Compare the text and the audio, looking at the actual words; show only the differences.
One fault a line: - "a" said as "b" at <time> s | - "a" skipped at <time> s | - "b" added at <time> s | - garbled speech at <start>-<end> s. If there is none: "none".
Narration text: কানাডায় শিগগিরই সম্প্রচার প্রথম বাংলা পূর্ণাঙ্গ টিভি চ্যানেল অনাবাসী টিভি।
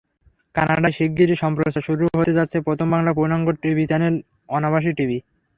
- "শুরু হতে যাচ্ছে" added at 1.9 s